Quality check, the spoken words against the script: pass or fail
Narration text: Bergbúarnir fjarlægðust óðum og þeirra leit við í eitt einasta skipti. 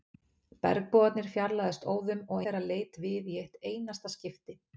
pass